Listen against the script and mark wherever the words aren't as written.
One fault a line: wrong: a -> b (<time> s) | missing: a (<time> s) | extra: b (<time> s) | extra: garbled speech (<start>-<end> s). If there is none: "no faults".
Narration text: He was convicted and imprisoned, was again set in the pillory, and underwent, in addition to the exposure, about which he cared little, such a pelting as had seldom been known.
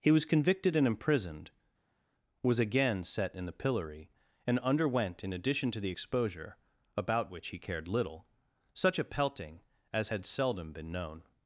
no faults